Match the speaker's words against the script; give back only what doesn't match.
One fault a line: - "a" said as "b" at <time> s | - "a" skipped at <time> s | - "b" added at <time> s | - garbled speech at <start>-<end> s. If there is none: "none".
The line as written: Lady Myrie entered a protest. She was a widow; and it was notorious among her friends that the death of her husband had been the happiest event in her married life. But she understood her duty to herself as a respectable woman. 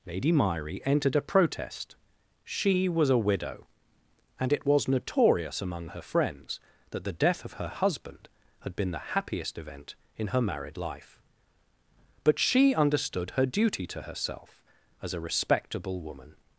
none